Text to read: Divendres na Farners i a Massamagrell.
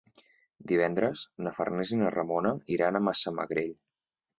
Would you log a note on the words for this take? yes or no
yes